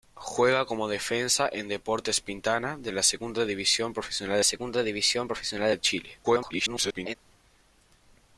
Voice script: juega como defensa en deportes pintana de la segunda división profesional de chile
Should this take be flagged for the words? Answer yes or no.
yes